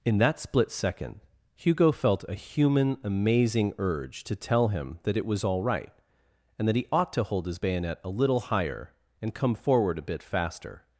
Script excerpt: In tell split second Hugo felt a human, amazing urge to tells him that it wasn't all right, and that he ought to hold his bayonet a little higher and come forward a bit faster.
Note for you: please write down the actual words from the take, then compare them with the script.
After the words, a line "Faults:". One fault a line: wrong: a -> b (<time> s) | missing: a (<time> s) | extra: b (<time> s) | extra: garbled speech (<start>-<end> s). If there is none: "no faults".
In that split second Hugo felt a human, amazing urge to tell him that it was all right, and that he ought to hold his bayonet a little higher and come forward a bit faster.
Faults:
wrong: tell -> that (0.2 s)
wrong: tells -> tell (4.3 s)
wrong: wasn't -> was (5.3 s)